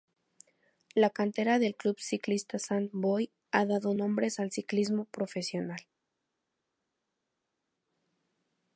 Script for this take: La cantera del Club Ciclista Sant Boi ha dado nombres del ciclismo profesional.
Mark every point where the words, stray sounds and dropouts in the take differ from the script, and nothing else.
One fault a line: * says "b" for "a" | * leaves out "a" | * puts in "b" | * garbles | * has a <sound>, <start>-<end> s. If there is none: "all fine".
* says "al" for "del"